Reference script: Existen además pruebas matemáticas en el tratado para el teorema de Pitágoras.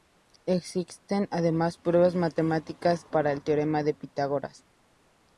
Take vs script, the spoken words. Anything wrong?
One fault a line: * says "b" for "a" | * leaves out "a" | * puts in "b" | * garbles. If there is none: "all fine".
* leaves out "en el tratado"